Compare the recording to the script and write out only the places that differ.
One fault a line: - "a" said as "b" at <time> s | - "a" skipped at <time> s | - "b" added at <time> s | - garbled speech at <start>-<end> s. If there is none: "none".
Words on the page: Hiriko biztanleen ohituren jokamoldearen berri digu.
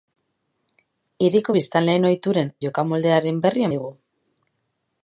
none